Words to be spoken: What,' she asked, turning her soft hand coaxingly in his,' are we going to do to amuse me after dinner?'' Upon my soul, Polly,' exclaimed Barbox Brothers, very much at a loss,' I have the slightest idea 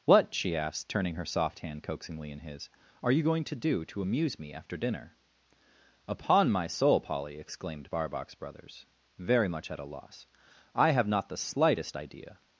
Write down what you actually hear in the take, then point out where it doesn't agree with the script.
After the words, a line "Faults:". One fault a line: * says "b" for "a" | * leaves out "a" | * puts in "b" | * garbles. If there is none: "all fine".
What,' she asked, turning her soft hand coaxingly in his,' are you going to do to amuse me after dinner?'' Upon my soul, Polly,' exclaimed Barbox Brothers, very much at a loss,' I have not the slightest idea
Faults:
* says "you" for "we"
* puts in "not"